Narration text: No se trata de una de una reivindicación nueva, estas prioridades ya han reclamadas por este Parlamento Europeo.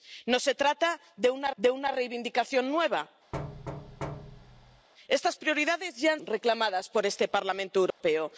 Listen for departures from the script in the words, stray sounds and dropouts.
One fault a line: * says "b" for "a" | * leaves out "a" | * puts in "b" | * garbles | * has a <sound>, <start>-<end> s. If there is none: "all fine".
* has a thud, 3.3-4.9 s
* has a dropout, 7.9-8.0 s